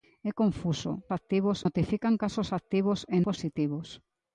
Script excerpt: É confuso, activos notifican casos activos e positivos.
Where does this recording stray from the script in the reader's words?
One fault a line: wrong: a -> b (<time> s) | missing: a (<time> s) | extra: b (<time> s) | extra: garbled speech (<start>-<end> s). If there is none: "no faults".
no faults